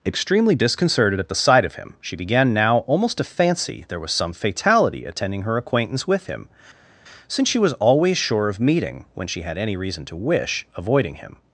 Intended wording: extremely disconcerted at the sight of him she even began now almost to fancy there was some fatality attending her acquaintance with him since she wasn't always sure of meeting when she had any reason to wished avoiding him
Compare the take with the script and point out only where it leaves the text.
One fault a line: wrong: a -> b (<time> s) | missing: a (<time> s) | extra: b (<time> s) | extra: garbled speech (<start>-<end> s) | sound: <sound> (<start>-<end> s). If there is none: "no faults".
missing: even (2.1 s)
wrong: wasn't -> was (7.6 s)
wrong: wished -> wish (10.2 s)